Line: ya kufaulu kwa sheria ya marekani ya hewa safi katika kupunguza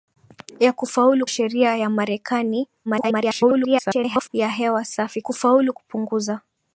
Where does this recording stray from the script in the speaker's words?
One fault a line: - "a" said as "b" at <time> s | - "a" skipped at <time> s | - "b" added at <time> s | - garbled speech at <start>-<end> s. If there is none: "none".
- "kwa" skipped at 1.3 s
- garbled speech at 2.9-4.3 s
- "katika" said as "kufaulu" at 5.2 s